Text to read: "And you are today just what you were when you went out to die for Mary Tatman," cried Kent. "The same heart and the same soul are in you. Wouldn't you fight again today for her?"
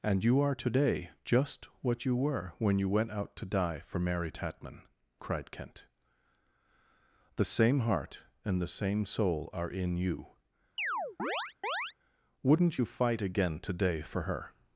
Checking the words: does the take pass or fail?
pass